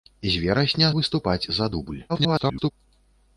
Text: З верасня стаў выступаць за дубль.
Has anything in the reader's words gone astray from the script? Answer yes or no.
yes